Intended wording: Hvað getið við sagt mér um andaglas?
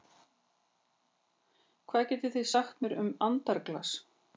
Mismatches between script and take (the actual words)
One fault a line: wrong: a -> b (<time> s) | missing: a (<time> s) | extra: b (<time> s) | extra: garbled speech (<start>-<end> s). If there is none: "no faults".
wrong: við -> þið (2.4 s)